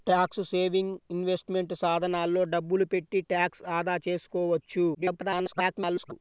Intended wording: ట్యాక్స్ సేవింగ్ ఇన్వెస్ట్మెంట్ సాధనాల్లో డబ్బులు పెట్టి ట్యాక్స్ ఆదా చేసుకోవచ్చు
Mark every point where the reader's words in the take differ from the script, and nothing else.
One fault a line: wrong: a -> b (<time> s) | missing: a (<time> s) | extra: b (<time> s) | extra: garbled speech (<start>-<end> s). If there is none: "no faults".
extra: garbled speech (4.9-6.1 s)